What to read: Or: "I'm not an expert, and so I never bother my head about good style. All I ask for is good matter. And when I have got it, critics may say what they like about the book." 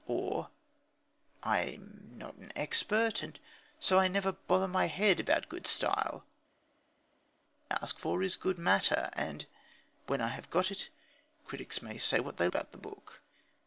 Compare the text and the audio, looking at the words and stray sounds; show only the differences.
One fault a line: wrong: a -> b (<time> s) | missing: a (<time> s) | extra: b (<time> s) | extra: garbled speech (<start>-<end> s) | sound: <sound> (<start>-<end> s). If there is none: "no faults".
missing: All I (6.2 s)
missing: like (12.5 s)